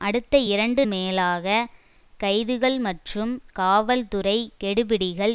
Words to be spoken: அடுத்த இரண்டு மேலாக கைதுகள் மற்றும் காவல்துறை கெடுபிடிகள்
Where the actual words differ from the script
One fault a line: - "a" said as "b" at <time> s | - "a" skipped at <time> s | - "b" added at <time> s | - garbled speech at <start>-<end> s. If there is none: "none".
none